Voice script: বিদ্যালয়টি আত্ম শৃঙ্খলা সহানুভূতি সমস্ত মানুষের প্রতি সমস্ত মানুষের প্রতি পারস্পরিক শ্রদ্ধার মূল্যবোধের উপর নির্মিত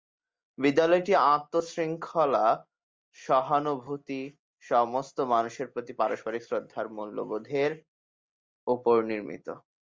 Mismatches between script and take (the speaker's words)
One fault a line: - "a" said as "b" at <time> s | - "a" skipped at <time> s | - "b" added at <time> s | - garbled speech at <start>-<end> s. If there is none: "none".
- "সমস্ত মানুষের প্রতি" skipped at 5.9 s